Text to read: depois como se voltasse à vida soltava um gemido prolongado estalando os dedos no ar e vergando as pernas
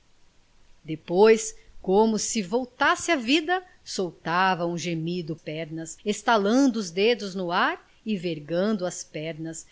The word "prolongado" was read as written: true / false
false